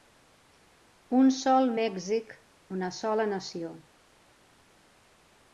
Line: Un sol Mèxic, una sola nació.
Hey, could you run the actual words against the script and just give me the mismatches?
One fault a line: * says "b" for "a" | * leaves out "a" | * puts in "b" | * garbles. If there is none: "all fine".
all fine